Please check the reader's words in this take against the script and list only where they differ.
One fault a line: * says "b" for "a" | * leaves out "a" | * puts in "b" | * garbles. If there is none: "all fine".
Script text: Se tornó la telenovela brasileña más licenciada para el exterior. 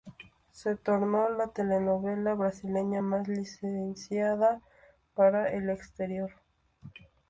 all fine